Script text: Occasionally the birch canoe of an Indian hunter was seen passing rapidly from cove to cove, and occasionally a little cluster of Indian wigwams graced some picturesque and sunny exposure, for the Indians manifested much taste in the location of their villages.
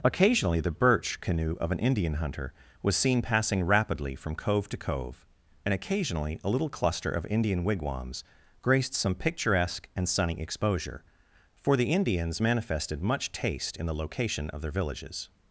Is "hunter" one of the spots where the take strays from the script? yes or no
no